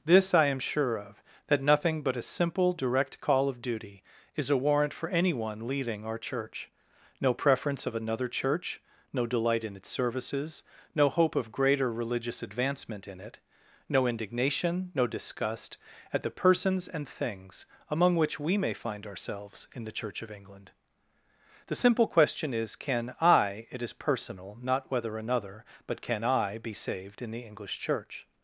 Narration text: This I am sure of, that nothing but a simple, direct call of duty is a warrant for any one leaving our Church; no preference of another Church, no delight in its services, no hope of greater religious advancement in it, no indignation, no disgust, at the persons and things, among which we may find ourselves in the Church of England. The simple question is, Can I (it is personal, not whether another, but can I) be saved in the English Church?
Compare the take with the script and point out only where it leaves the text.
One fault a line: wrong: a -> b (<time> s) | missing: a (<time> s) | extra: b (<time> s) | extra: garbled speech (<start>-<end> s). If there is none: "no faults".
wrong: any one leaving -> anyone leading (5.1 s)